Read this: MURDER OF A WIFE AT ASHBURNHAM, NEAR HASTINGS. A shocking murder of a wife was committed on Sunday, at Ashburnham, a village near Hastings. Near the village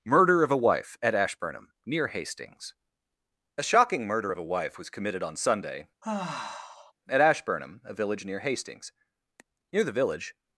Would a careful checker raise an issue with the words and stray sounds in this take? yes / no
yes